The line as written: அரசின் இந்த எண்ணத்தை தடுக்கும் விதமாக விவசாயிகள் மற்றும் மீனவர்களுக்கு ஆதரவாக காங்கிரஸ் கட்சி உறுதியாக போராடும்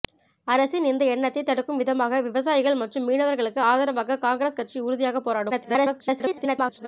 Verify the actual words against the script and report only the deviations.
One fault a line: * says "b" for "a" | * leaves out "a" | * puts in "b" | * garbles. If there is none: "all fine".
* garbles